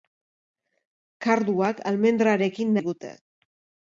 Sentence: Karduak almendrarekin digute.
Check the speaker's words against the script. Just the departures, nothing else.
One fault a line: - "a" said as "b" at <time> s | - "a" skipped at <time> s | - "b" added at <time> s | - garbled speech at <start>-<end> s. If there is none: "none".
none